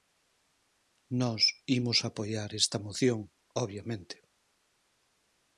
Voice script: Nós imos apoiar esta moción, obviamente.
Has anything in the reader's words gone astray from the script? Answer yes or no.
no